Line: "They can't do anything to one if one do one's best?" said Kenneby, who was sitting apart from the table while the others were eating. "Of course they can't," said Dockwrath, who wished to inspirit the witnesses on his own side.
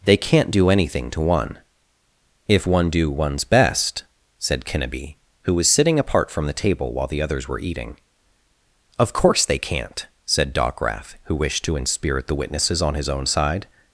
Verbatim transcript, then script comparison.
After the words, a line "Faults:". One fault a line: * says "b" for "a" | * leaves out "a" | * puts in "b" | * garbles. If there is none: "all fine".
"They can't do anything to one if one do one's best?" said Kenneby, who was sitting apart from the table while the others were eating. "Of course they can't," said Dockwrath, who wished to inspirit the witnesses on his own side.
Faults:
all fine